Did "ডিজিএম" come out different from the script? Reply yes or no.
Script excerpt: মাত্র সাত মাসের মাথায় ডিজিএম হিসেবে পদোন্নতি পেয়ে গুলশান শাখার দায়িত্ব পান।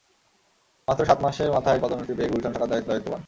yes